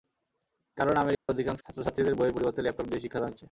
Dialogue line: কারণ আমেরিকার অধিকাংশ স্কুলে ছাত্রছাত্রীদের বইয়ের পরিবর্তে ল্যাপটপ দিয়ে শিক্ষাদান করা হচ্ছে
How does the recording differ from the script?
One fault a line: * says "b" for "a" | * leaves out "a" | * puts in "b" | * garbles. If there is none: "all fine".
* leaves out "স্কুলে"
* leaves out "করা"